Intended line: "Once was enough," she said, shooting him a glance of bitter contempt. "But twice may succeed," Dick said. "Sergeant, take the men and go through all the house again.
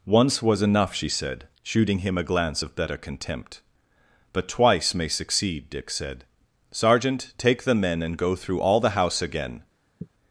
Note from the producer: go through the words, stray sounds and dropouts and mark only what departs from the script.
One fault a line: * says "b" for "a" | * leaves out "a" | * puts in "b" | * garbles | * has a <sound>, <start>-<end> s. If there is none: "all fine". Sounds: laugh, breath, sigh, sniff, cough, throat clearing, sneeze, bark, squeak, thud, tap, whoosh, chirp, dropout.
* says "better" for "bitter"
* has a sigh, 10.0-10.1 s